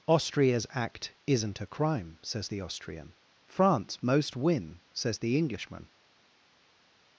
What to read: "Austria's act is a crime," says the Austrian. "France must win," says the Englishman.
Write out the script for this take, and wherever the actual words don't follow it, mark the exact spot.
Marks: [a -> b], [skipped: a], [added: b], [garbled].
"Austria's act [is -> isn't] a crime," says the Austrian. "France [must -> most] win," says the Englishman.